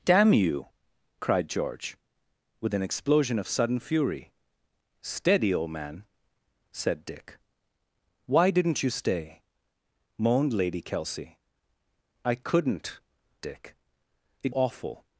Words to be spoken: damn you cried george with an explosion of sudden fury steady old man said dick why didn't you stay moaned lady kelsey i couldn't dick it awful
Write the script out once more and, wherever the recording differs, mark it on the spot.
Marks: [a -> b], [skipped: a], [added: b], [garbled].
damn you cried george with an explosion of sudden fury steady old man said dick why didn't you stay moaned lady kelsey i couldn't dick it awful